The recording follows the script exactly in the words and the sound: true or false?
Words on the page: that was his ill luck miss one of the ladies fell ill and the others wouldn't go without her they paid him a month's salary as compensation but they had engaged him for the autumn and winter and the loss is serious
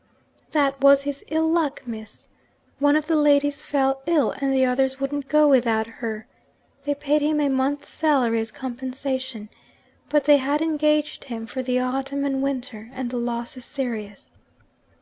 true